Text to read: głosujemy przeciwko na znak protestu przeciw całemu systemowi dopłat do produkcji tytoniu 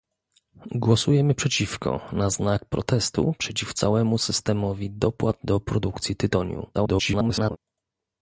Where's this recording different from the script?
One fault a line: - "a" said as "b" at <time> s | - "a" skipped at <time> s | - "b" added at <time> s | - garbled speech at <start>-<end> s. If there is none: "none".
- garbled speech at 6.7-7.6 s